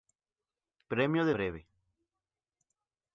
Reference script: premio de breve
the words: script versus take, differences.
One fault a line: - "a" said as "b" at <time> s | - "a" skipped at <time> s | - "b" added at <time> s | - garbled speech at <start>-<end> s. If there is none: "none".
none